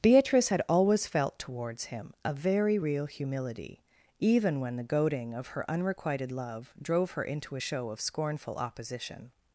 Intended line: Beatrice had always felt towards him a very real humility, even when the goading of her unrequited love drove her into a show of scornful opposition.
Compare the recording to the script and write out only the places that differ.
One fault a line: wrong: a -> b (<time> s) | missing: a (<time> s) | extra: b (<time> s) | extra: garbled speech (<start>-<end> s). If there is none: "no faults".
no faults